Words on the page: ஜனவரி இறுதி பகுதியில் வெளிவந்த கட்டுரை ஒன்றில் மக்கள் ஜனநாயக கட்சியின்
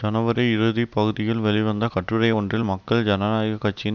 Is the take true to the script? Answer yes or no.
yes